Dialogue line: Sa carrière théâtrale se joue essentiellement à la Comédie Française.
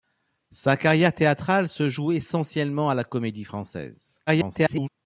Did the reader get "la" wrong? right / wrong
right